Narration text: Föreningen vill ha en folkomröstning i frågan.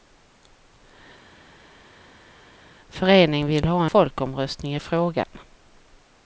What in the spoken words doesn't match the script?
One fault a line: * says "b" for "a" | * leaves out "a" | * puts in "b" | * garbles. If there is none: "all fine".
* leaves out "en"